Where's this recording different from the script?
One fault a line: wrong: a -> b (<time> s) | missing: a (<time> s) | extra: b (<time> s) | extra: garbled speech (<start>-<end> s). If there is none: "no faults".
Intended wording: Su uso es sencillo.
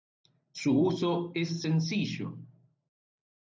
no faults